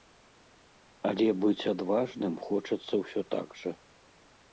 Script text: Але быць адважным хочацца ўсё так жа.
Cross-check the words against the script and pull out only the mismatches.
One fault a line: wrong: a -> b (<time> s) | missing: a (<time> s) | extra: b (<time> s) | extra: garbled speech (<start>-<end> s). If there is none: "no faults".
no faults